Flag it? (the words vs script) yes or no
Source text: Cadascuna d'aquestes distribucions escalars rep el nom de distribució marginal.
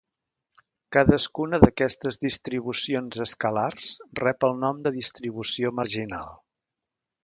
no